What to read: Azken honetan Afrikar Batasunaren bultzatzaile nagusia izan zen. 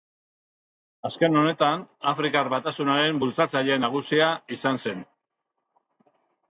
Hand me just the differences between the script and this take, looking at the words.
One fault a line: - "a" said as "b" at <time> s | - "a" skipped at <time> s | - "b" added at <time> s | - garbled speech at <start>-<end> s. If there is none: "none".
none